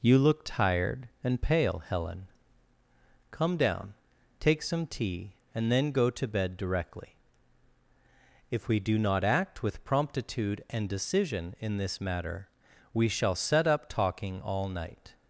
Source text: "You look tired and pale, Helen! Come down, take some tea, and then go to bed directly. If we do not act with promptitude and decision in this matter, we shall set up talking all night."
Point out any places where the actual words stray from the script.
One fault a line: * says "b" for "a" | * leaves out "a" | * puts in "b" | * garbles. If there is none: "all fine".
all fine